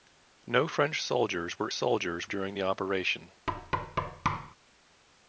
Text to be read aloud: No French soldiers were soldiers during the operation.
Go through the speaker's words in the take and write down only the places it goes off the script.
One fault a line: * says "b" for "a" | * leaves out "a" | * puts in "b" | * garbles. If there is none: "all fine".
all fine